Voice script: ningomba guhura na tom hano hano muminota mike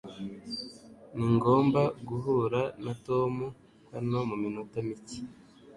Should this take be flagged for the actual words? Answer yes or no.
yes